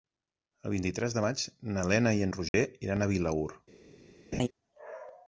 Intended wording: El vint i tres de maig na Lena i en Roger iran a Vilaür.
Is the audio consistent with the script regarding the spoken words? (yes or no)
yes